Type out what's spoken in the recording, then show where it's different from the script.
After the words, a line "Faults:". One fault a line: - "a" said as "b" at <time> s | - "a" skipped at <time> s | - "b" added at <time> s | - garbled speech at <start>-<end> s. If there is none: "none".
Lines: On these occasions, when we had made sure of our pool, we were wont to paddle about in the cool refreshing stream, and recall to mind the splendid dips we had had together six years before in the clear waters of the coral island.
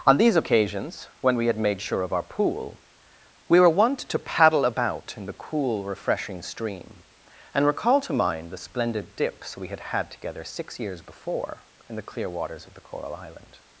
On these occasions, when we had made sure of our pool, we were wont to paddle about in the cool refreshing stream, and recall to mind the splendid dips we had had together six years before in the clear waters of the coral island.
Faults:
none